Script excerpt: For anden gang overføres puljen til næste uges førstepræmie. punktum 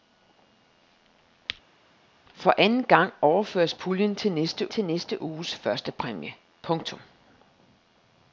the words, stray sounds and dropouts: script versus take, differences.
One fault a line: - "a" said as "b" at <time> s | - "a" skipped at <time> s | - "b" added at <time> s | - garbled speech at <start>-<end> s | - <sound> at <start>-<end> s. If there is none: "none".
- "til næste" added at 4.7 s